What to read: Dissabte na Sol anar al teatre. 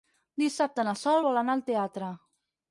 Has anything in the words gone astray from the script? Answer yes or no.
yes